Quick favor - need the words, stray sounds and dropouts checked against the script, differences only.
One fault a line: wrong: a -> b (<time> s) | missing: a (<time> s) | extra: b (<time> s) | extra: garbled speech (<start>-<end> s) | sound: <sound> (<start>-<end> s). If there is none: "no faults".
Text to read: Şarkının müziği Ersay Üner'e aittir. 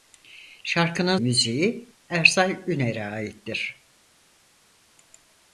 no faults